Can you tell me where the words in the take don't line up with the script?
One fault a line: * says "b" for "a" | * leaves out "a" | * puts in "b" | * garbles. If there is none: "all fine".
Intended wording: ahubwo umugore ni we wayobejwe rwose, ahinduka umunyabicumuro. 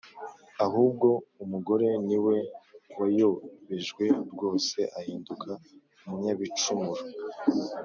all fine